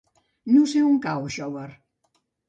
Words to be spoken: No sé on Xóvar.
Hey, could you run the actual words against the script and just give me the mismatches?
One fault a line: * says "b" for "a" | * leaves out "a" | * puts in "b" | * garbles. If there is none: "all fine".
* puts in "cau"